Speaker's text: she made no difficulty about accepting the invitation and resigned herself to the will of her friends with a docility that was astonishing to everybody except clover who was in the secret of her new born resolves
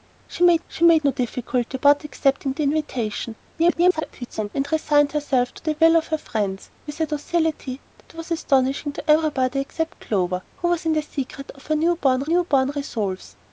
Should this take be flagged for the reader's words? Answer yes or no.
yes